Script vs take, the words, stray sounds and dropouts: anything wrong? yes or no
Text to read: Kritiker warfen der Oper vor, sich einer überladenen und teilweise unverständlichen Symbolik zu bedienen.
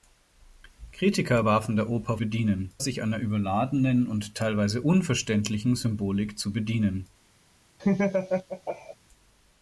yes